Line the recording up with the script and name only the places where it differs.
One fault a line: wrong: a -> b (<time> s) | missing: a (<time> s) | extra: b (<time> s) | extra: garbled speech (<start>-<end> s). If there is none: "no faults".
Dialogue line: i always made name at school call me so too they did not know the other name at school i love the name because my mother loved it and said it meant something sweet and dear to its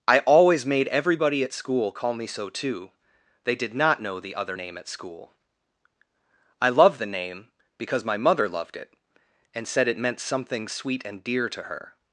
wrong: name -> everybody (0.9 s)
wrong: its -> her (11.6 s)